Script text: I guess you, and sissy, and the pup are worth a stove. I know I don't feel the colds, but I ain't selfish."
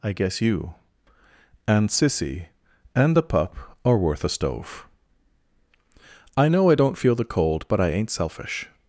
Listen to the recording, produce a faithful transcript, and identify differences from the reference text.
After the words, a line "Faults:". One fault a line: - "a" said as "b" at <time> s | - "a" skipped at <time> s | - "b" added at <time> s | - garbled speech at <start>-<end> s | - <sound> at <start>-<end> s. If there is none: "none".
I guess you, and sissy, and the pup are worth a stove. I know I don't feel the cold, but I ain't selfish."
Faults:
- "colds" said as "cold" at 7.3 s